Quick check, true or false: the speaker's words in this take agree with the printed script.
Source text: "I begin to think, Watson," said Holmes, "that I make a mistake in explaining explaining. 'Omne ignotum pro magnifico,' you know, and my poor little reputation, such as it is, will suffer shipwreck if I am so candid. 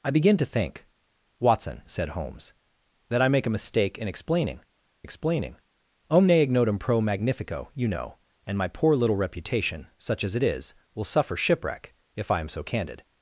true